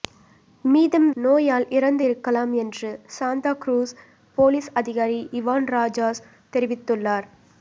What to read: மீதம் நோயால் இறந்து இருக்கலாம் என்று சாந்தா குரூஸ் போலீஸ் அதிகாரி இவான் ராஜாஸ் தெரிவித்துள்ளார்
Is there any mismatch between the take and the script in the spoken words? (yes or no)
no